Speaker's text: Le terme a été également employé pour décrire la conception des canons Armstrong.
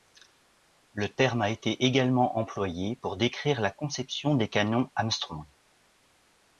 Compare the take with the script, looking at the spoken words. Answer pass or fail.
pass